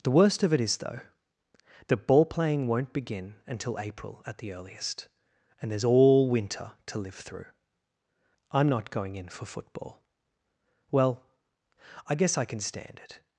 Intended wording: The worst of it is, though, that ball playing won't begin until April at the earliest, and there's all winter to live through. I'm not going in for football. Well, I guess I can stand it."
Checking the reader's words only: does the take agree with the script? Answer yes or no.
yes